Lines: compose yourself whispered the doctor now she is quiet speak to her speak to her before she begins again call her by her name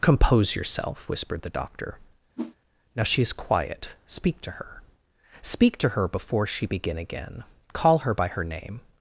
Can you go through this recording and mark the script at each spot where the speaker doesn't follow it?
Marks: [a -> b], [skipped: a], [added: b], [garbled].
compose yourself whispered the doctor now she is quiet speak to her speak to her before she [begins -> begin] again call her by her name